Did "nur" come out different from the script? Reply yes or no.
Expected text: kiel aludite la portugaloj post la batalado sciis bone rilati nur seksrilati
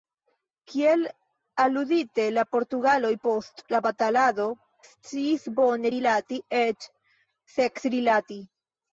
yes